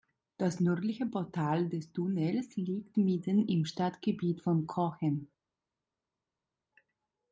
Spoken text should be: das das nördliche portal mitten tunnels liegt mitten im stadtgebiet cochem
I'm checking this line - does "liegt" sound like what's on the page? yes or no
yes